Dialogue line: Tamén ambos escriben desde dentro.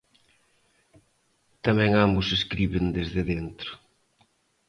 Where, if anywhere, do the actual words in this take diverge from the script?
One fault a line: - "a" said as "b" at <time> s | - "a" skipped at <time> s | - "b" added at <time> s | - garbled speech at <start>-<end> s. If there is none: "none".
none